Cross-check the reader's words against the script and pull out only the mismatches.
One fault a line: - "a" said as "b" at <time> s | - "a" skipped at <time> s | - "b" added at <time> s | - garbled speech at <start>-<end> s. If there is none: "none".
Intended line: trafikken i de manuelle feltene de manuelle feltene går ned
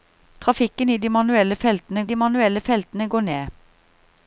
none